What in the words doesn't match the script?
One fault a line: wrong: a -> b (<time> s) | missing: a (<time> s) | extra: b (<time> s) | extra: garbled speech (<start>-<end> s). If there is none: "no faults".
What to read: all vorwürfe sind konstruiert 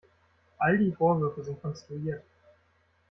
extra: die (0.8 s)